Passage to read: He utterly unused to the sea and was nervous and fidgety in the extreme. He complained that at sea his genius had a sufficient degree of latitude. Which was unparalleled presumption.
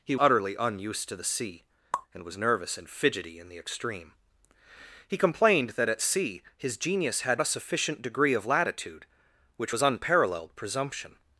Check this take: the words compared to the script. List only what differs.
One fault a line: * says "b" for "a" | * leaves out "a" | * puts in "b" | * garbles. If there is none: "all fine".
all fine